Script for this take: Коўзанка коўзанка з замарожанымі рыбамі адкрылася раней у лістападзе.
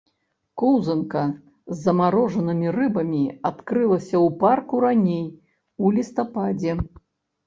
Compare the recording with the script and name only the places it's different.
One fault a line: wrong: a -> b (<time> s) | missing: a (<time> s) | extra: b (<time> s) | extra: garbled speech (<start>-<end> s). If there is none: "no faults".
missing: коўзанка (1.2 s)
extra: ў парку (4.2 s)